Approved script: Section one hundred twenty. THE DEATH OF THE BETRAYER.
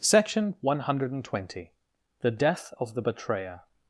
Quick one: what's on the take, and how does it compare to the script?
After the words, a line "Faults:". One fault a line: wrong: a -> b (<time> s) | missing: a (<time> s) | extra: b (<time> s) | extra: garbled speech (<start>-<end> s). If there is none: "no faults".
Section one hundred twenty. THE DEATH OF THE BETRAYER.
Faults:
no faults